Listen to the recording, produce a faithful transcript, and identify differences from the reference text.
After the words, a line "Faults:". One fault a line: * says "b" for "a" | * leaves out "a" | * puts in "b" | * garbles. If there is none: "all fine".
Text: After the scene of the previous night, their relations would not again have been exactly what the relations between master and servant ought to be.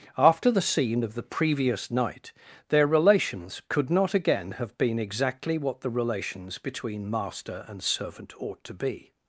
After the scene of the previous night, their relations could not again have been exactly what the relations between master and servant ought to be.
Faults:
* says "could" for "would"